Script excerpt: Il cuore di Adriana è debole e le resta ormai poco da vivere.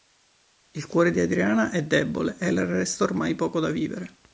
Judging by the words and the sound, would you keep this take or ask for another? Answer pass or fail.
pass